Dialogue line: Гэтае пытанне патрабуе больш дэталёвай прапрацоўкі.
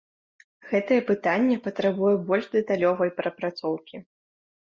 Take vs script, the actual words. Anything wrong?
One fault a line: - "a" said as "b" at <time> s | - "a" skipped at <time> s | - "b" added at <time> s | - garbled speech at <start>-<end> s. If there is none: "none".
none